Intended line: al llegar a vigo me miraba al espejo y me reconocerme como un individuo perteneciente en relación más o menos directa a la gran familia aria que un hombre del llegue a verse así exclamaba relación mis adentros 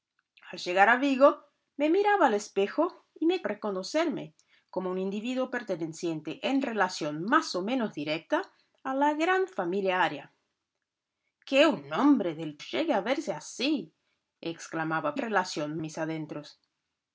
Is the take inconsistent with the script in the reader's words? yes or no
no